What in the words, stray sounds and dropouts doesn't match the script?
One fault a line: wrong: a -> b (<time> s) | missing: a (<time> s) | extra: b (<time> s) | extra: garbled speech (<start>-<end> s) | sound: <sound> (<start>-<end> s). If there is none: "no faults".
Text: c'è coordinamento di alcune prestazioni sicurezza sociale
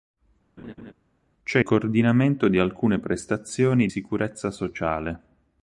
sound: laugh (0.6-0.9 s)